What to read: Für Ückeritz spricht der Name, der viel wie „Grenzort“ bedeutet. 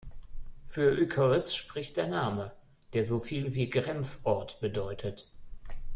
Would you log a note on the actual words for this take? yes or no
yes